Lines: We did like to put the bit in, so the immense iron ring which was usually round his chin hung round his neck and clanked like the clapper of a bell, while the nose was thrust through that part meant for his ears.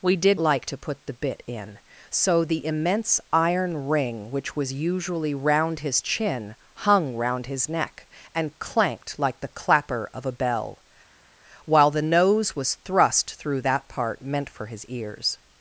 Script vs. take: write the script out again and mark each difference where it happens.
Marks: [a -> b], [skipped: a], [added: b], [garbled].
We did like to put the bit in, so the immense iron ring which was usually round his chin hung round his neck and clanked like the clapper of a bell, while the nose was thrust through that part meant for his ears.